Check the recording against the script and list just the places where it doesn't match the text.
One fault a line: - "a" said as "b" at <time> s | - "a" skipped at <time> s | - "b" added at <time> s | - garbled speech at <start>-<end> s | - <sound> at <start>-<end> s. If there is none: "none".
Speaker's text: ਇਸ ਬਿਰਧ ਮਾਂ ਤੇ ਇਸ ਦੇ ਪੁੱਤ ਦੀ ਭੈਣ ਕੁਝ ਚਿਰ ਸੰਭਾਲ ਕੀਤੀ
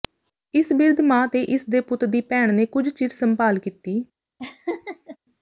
- "ਨੇ" added at 2.5 s
- laugh at 4.4-5.2 s